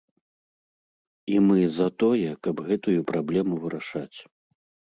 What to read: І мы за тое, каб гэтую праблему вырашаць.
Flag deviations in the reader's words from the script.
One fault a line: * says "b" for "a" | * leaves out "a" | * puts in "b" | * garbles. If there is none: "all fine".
all fine